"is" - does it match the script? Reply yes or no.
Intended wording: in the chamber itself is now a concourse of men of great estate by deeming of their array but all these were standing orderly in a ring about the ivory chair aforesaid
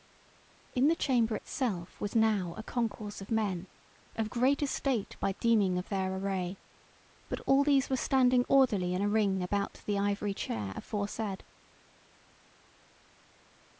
no